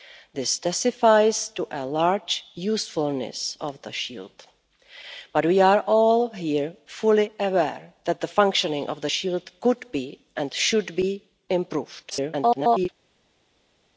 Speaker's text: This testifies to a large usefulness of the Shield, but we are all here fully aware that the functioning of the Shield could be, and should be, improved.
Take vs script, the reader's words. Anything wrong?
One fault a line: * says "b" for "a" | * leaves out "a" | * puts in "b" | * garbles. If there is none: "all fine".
* garbles